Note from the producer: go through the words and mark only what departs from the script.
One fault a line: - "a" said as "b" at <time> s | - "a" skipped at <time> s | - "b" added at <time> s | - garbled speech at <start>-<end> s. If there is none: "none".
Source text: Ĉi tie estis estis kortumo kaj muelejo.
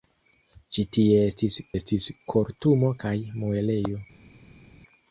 none